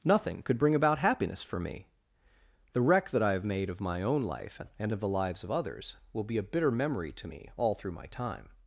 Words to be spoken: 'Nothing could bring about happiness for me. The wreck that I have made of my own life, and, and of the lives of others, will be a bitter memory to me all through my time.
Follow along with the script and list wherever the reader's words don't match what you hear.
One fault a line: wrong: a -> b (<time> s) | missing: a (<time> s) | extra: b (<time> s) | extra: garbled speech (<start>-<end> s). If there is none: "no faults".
missing: and (4.9 s)